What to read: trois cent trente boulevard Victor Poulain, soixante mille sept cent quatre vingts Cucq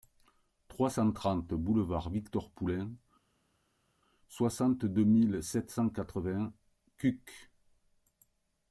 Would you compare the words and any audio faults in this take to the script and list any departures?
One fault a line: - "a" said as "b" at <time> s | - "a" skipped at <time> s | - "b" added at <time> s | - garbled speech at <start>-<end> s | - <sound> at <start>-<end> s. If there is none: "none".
- "deux" added at 4.8 s